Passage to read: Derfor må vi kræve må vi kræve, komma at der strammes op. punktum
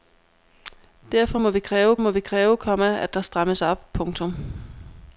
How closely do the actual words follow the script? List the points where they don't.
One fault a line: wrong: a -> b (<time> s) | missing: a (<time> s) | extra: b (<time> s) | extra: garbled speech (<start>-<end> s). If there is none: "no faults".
no faults